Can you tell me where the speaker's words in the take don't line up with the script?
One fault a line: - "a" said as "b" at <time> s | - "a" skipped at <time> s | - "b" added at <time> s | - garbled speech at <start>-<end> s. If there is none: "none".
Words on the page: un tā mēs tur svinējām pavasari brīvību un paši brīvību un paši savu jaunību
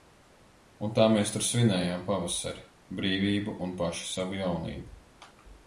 - "brīvību un paši" skipped at 4.1 s